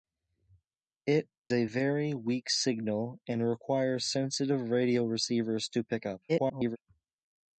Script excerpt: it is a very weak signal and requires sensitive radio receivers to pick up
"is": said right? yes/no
no